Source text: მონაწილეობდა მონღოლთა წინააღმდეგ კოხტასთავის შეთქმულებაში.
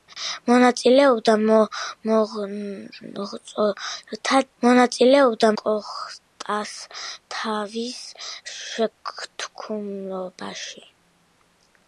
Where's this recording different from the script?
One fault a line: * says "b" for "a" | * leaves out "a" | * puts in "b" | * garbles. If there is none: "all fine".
* says "მონაწილეობდა" for "წინააღმდეგ"